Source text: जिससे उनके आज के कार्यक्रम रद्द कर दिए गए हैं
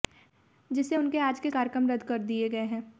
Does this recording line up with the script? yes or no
yes